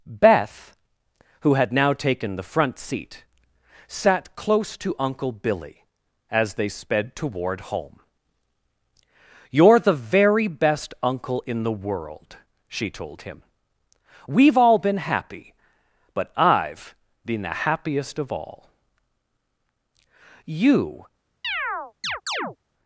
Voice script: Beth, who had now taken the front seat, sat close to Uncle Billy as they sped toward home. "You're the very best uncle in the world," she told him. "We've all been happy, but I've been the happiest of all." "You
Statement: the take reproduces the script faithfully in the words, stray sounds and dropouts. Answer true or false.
false